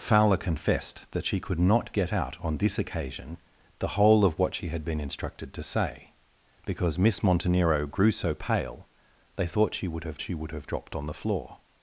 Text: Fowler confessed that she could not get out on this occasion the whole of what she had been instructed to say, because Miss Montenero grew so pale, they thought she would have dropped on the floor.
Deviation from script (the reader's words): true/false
true